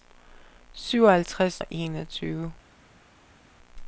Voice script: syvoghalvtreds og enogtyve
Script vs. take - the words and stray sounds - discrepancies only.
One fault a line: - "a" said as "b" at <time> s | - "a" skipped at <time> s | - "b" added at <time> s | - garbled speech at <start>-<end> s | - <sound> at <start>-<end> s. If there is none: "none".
none